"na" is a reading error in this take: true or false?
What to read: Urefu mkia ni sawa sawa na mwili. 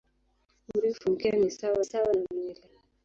false